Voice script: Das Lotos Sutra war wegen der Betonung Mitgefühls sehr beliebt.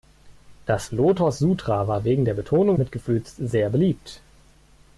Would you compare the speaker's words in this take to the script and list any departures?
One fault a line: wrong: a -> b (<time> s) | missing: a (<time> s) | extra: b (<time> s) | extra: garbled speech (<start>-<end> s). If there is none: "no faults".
no faults